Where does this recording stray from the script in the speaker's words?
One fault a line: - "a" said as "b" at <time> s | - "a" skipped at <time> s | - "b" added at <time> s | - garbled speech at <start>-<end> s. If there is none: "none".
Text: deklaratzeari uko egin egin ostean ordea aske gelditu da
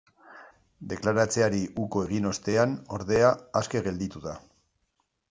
- "egin" skipped at 2.2 s